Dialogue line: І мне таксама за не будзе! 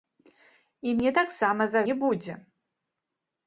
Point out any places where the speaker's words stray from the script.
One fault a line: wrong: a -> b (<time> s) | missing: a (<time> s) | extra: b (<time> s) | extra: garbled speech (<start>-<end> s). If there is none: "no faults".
no faults